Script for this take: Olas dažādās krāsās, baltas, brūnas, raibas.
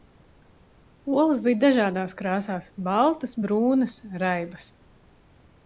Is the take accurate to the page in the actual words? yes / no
no